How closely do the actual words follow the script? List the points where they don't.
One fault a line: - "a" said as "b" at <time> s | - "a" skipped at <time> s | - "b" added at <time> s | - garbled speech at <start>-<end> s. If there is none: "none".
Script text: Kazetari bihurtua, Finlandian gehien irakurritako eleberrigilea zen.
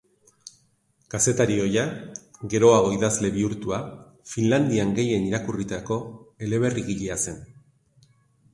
- "ohia geroago idazle" added at 1.6 s